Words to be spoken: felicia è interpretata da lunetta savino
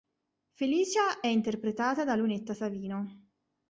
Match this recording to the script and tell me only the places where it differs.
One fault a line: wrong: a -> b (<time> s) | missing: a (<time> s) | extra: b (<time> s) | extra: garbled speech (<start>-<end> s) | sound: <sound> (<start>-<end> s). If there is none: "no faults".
no faults